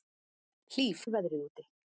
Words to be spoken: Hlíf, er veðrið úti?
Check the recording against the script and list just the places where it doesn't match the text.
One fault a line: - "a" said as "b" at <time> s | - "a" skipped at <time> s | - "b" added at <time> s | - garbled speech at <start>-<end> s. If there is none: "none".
none